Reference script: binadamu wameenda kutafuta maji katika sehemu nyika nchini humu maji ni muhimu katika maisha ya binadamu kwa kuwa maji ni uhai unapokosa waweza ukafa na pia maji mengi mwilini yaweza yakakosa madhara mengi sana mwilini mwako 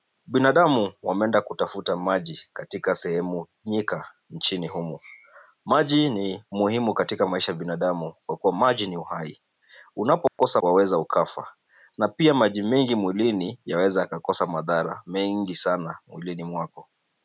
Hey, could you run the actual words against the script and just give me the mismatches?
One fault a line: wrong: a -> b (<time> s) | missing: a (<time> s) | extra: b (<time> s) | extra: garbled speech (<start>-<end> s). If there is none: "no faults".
no faults